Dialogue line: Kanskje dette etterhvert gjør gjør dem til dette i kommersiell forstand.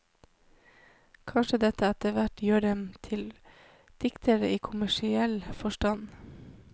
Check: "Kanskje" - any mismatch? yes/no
no